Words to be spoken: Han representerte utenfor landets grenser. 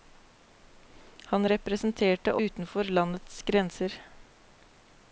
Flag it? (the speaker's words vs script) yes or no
no